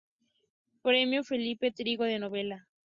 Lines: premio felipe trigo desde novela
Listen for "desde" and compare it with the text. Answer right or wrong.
wrong